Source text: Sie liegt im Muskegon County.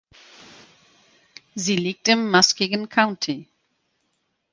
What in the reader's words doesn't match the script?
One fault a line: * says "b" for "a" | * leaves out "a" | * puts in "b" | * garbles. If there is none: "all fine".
all fine